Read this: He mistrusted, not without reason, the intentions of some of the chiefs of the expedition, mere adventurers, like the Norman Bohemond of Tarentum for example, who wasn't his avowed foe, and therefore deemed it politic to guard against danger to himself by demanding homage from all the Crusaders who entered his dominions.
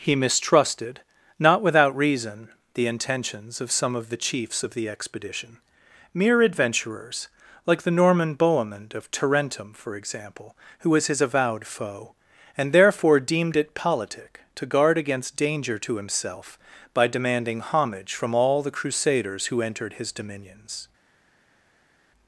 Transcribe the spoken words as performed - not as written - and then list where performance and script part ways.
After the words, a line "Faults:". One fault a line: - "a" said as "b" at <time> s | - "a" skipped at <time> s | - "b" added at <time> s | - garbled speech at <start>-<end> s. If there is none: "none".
He mistrusted, not without reason, the intentions of some of the chiefs of the expedition, mere adventurers, like the Norman Bohemond of Tarentum for example, who was his avowed foe, and therefore deemed it politic to guard against danger to himself by demanding homage from all the Crusaders who entered his dominions.
Faults:
- "wasn't" said as "was" at 10.9 s